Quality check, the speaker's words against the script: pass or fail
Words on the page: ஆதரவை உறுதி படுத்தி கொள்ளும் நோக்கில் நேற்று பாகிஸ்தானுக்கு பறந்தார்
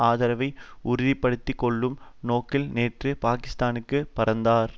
pass